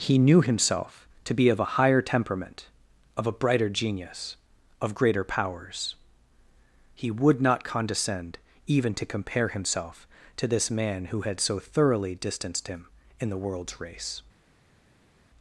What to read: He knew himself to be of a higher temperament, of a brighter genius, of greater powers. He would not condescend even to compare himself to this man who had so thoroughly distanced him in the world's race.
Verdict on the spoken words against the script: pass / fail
pass